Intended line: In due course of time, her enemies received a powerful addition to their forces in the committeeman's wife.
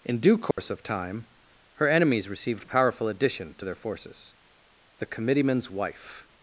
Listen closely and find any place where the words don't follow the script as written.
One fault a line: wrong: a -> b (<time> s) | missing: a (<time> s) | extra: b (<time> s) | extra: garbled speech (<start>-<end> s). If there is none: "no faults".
missing: a (2.7 s)
missing: in (4.3 s)